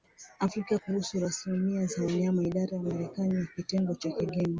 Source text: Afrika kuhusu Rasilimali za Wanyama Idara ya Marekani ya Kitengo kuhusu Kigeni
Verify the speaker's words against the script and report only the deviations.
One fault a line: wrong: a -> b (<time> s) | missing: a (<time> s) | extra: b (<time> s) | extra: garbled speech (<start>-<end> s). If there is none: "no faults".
wrong: kuhusu -> cha (4.0 s)